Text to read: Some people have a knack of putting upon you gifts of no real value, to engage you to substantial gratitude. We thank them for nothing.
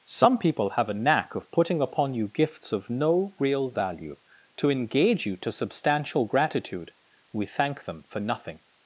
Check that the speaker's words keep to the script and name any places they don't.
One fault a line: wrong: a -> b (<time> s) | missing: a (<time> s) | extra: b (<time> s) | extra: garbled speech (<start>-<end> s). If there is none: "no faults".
no faults